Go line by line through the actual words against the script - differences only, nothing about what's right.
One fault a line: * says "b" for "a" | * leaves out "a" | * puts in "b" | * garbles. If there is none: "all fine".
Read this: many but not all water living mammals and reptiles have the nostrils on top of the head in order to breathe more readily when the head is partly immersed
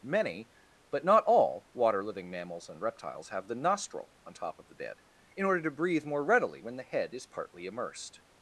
* says "nostril" for "nostrils"
* says "bed" for "head"